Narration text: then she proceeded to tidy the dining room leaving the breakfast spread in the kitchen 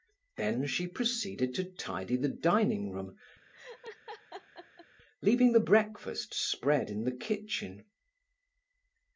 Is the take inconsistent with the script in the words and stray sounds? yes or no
yes